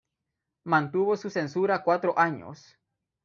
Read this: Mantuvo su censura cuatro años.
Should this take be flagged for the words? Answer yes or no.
no